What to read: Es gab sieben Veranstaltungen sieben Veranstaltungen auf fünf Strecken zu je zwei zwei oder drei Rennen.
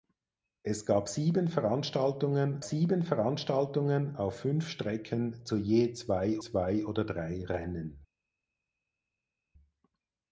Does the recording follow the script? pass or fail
pass